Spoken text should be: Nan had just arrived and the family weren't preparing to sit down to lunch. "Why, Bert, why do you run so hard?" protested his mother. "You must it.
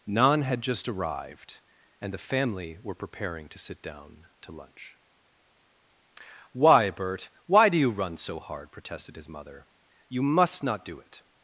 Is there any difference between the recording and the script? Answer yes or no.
yes